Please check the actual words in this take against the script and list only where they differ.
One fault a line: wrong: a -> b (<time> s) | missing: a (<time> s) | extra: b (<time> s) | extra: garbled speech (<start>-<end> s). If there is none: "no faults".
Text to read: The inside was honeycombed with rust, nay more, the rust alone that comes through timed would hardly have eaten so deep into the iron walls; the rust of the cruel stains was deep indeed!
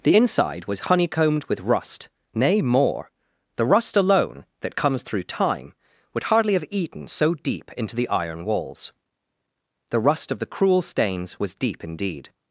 wrong: timed -> time (5.2 s)